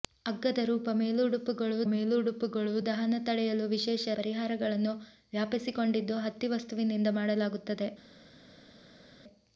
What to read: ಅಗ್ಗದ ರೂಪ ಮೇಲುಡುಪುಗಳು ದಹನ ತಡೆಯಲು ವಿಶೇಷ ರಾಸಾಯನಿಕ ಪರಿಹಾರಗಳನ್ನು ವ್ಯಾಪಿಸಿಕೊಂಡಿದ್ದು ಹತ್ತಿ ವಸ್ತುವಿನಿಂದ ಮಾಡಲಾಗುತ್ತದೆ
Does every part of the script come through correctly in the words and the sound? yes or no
no